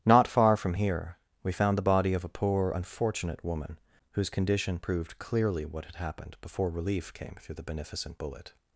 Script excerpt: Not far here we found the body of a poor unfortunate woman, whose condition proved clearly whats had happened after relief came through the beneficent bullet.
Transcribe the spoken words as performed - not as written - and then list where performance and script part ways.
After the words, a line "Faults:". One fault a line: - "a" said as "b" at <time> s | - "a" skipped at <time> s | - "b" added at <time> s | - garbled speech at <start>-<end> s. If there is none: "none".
Not far from here we found the body of a poor unfortunate woman, whose condition proved clearly what had happened before relief came through the beneficent bullet.
Faults:
- "from" added at 0.6 s
- "whats" said as "what" at 5.6 s
- "after" said as "before" at 6.4 s